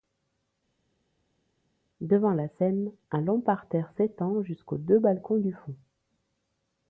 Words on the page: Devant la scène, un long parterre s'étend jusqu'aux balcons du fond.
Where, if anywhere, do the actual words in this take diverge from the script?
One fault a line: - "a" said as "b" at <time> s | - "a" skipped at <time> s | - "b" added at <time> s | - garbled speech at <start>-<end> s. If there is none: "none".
- "deux" added at 4.8 s